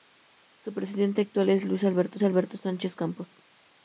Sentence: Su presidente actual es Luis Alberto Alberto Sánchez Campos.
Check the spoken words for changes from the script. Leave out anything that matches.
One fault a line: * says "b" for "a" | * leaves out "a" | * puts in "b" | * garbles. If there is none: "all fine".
all fine